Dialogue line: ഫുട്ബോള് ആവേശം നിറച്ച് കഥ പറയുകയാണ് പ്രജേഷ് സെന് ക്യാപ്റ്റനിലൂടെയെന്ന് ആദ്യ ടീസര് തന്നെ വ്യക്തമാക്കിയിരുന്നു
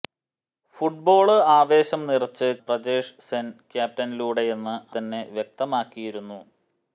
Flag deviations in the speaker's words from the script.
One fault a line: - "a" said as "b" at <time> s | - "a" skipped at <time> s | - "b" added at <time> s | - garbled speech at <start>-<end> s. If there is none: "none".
- "കഥ പറയുകയാണ്" skipped at 2.5 s
- "ആദ്യ ടീസര്" skipped at 4.7 s